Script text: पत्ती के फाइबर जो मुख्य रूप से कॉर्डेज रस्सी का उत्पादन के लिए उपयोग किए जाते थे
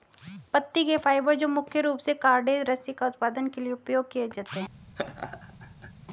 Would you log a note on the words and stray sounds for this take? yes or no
yes